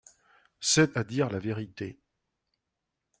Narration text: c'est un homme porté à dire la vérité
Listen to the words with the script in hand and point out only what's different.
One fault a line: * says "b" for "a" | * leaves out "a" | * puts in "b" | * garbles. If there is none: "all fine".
* leaves out "un homme porté"